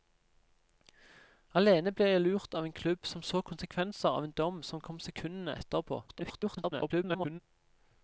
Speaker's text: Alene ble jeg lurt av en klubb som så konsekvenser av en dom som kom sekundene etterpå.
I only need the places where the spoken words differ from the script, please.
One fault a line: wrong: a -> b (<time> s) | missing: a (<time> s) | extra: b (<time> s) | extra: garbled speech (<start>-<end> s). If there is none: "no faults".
extra: garbled speech (6.1-7.4 s)